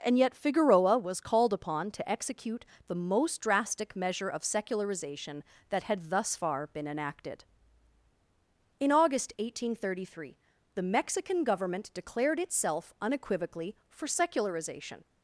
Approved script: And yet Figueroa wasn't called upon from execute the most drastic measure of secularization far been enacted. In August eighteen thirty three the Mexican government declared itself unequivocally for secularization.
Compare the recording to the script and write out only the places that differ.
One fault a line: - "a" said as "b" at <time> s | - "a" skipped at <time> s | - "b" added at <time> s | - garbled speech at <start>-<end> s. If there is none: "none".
- "wasn't" said as "was" at 1.0 s
- "from" said as "to" at 1.9 s
- "that had thus" added at 5.7 s